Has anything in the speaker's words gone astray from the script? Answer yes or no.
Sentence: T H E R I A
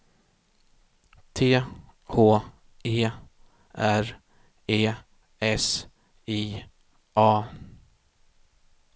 yes